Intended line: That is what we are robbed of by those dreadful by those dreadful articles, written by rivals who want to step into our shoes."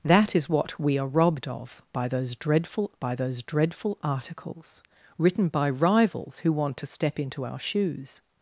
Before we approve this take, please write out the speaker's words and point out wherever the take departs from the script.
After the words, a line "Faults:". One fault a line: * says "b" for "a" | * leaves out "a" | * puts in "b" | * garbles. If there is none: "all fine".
That is what we are robbed of by those dreadful by those dreadful articles, written by rivals who want to step into our shoes."
Faults:
all fine